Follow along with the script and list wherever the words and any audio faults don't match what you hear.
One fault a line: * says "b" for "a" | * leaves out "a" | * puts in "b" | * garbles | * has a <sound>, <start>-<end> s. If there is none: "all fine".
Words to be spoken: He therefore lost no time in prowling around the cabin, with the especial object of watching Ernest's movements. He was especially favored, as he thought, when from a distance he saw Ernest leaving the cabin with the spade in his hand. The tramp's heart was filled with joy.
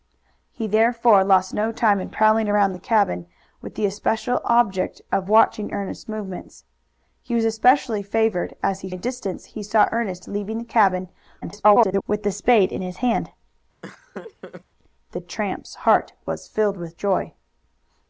* leaves out "thought when from"
* garbles
* has a laugh, 13.8-14.6 s